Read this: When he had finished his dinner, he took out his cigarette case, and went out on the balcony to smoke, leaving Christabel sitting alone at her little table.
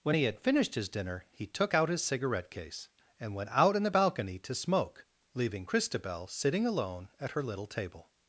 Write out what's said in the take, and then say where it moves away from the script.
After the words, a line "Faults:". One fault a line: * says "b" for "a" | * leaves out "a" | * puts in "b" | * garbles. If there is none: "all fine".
When he had finished his dinner, he took out his cigarette case, and went out in the balcony to smoke, leaving Christabel sitting alone at her little table.
Faults:
* says "in" for "on"